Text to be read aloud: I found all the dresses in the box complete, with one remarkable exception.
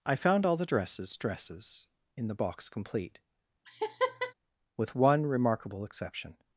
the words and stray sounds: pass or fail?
fail